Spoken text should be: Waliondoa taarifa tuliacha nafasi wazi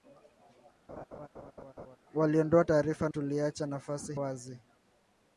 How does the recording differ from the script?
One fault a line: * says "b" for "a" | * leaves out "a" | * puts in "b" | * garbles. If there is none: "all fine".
all fine